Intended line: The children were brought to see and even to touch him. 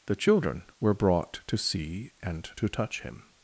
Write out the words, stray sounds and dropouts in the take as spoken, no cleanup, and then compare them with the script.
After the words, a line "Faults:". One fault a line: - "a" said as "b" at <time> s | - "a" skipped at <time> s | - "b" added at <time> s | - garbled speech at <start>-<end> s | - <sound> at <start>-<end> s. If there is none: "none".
The children were brought to see and to touch him.
Faults:
- "even" skipped at 2.5 s